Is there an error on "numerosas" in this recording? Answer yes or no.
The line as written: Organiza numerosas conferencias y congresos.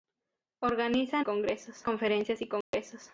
yes